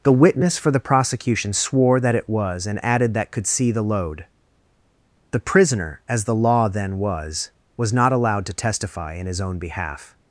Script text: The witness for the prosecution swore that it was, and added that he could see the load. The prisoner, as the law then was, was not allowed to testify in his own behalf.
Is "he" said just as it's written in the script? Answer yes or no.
no